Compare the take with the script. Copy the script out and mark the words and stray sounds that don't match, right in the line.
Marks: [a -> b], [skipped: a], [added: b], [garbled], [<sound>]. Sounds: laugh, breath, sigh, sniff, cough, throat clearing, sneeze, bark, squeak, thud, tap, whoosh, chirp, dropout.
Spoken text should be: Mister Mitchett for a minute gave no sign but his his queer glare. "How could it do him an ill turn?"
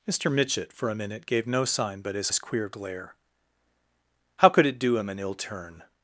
Mister Mitchett for a minute gave no sign but his his queer glare. "How could it do him an ill turn?"